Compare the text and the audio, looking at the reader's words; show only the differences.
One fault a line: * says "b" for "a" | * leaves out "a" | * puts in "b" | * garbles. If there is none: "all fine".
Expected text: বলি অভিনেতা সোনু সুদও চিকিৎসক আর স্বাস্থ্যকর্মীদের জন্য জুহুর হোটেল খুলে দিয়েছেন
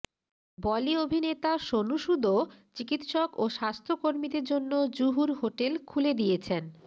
* says "ও" for "আর"